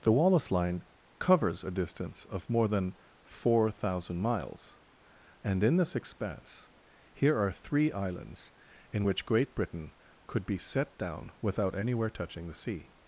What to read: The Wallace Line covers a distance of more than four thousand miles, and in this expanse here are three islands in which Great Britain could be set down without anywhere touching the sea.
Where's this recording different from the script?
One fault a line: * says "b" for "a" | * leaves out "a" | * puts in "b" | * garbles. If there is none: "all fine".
all fine